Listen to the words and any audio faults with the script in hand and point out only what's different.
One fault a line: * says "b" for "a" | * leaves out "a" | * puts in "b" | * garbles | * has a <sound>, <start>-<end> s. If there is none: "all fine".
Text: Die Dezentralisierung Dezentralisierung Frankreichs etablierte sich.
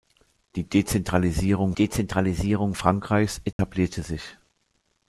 * has a dropout, 3.5-3.6 s